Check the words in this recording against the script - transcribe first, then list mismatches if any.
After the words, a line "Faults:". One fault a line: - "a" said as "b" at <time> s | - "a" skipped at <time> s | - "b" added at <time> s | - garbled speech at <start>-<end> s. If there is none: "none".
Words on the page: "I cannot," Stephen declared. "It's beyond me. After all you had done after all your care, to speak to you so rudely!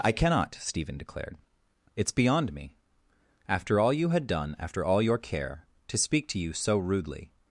"I cannot," Stephen declared. "It's beyond me. After all you had done after all your care, to speak to you so rudely!
Faults:
none